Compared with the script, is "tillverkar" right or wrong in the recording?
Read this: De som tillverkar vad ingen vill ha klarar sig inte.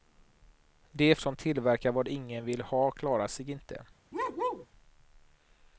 right